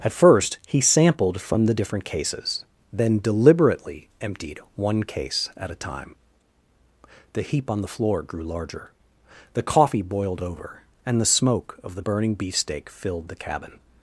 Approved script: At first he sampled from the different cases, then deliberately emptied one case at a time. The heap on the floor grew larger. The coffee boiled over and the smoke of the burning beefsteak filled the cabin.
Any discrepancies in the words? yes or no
no